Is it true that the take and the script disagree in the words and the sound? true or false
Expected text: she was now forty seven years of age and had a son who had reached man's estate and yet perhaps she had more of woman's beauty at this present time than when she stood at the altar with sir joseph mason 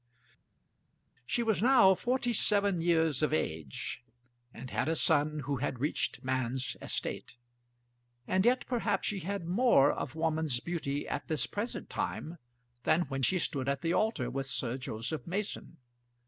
false